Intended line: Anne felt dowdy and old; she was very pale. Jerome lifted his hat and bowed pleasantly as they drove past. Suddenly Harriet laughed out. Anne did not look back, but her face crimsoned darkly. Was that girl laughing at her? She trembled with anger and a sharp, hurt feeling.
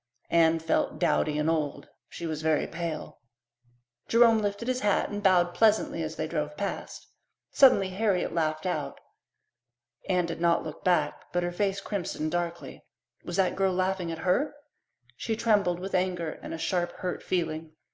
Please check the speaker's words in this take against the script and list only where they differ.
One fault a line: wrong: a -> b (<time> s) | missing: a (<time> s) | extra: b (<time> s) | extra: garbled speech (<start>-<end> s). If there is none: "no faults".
no faults